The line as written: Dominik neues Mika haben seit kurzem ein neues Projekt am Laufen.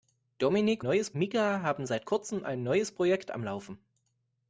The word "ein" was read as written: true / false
true